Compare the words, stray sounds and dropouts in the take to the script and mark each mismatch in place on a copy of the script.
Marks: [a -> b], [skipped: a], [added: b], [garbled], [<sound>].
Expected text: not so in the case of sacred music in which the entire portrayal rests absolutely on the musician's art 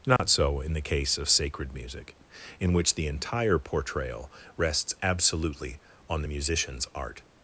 not [dropout] so in the case of sacred music in which the entire portrayal rests absolutely on the musician's art